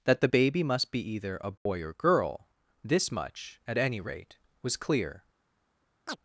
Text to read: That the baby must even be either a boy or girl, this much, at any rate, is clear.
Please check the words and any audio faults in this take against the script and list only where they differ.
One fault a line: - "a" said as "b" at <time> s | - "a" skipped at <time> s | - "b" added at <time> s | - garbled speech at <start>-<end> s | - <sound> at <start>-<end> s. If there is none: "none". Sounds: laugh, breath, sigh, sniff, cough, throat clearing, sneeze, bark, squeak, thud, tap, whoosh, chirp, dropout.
- "even" skipped at 0.9 s
- dropout at 1.6-1.7 s
- "is" said as "was" at 4.6 s
- chirp at 6.1-6.2 s